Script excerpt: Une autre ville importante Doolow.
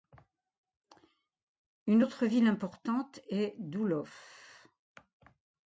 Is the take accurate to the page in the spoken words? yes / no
no